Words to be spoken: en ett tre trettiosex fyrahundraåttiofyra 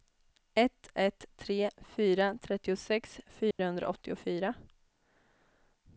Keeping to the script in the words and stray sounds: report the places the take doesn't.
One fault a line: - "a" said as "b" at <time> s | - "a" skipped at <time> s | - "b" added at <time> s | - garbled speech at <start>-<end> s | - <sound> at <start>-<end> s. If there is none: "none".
- "en" said as "ett" at 0.5 s
- "fyra" added at 1.8 s
- dropout at 3.5-3.6 s